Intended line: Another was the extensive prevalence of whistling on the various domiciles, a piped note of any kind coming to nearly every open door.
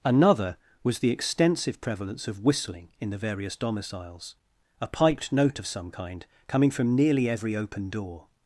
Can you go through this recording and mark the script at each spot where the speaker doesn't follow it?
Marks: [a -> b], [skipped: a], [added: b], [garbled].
Another was the extensive prevalence of whistling [on -> in] the various domiciles, a piped note of [any -> some] kind coming [to -> from] nearly every open door.